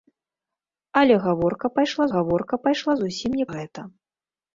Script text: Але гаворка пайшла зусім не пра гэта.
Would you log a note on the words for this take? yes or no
yes